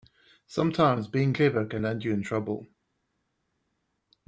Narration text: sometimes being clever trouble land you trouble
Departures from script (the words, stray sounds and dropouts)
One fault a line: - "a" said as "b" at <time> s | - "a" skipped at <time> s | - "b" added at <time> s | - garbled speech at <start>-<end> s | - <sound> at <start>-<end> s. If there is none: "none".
- "trouble" said as "can" at 1.6 s
- "in" added at 2.1 s